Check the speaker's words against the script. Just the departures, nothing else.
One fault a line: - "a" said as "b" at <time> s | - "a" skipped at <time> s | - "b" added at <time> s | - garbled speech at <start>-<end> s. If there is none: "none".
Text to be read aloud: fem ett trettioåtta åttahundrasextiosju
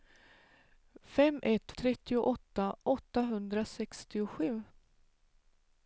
none